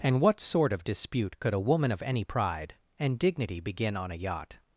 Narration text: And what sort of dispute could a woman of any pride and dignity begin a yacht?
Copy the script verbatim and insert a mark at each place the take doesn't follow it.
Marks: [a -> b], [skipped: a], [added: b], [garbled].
And what sort of dispute could a woman of any pride and dignity begin [added: on] a yacht?